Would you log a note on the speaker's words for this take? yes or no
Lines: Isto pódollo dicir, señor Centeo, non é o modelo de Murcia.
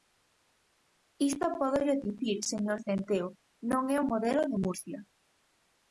no